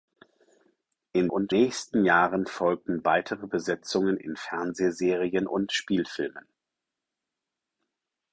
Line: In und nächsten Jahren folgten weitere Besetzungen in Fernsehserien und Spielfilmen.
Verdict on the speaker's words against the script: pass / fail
pass